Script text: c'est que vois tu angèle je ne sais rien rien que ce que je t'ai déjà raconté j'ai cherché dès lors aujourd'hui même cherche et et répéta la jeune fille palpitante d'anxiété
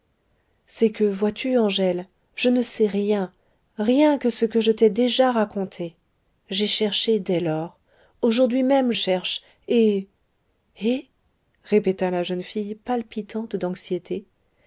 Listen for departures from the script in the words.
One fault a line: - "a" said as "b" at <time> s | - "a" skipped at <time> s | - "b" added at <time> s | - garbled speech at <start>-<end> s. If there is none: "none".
none